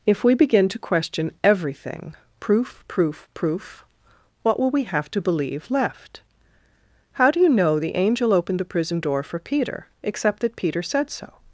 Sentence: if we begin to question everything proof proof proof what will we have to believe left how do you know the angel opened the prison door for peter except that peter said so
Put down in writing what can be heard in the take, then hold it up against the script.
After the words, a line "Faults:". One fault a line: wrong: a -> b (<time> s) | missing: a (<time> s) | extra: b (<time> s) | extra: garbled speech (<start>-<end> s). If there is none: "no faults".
if we begin to question everything proof proof proof what will we have to believe left how do you know the angel opened the prison door for peter except that peter said so
Faults:
no faults